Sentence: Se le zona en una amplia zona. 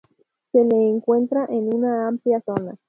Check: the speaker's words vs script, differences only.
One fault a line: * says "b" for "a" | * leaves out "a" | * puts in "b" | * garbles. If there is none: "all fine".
* says "encuentra" for "zona"